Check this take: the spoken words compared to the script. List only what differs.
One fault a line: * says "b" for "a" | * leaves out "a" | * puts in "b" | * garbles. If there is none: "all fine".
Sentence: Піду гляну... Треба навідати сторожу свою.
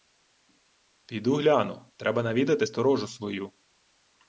all fine